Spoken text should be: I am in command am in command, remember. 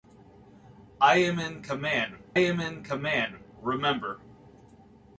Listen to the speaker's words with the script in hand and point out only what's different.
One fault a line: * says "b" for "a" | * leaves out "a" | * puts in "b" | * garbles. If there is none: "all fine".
all fine